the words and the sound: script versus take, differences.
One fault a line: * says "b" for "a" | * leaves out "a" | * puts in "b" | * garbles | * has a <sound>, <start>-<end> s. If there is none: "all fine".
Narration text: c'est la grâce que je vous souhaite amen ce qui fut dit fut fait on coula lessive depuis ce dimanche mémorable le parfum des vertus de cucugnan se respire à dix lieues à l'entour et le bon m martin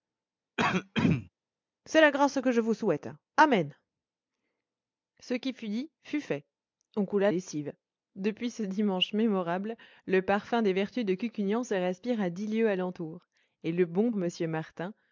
* has a throat clearing, 0.6-1.3 s